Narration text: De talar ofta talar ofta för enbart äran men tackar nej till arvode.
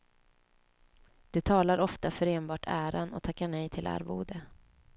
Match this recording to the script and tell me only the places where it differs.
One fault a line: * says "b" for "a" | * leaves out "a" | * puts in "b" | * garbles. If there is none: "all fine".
* leaves out "talar ofta"
* says "och" for "men"